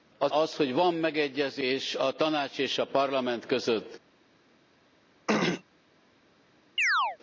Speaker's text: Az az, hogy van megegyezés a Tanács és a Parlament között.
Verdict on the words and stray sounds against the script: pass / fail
fail